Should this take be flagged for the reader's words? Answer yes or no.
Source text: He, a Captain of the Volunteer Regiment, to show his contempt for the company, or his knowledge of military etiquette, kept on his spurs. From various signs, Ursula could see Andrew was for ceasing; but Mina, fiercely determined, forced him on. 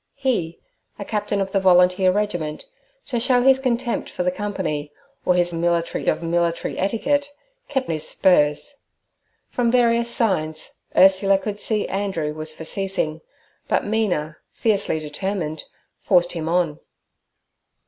yes